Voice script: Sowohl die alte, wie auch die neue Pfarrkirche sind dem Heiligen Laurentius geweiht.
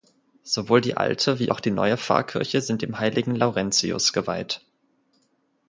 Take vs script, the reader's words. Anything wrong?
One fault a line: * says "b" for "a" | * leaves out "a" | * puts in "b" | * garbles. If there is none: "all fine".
all fine